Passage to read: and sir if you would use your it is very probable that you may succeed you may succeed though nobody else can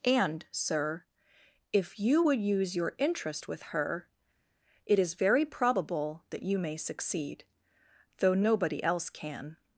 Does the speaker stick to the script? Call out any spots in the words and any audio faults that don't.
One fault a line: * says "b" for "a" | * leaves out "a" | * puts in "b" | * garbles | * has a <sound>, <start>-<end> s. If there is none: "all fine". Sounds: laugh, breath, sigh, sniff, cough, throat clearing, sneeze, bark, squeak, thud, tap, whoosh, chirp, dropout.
* puts in "interest with her"
* leaves out "you may succeed"